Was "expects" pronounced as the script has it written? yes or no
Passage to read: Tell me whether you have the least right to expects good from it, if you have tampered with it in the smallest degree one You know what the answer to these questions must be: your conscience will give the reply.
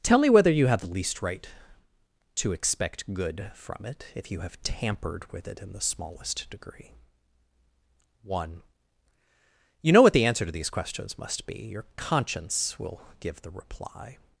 no